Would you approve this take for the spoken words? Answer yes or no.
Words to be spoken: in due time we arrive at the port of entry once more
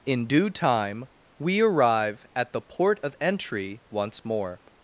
yes